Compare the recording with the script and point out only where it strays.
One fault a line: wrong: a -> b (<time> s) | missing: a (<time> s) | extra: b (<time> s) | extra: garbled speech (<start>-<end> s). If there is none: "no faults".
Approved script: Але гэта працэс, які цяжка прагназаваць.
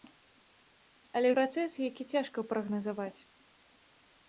missing: гэта (1.3 s)